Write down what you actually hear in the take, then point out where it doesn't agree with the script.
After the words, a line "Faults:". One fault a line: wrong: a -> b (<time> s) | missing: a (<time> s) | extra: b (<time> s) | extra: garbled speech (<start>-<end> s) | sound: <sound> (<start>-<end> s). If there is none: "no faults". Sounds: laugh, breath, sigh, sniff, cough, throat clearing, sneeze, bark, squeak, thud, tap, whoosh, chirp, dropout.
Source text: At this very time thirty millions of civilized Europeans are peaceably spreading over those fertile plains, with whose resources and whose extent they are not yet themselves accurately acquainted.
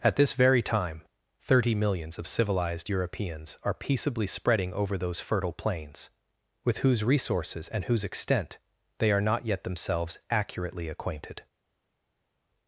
At this very time thirty millions of civilized Europeans are peaceably spreading over those fertile plains, with whose resources and whose extent they are not yet themselves accurately acquainted.
Faults:
no faults